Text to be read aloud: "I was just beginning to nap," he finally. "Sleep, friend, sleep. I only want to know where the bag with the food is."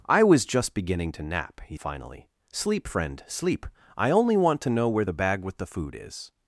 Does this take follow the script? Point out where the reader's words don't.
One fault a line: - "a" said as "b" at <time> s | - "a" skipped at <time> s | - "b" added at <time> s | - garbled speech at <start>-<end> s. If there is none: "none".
none